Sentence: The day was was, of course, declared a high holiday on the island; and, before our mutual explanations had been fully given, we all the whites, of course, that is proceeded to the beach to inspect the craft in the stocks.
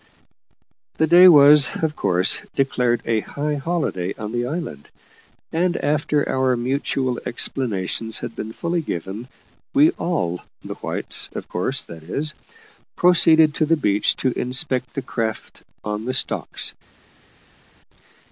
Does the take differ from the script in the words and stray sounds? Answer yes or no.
yes